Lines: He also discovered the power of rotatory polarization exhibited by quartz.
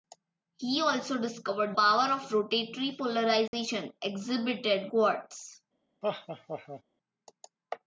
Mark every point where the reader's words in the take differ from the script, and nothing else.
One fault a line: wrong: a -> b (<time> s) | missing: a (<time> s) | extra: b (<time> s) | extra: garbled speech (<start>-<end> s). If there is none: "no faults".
missing: the (1.8 s)
missing: by (4.9 s)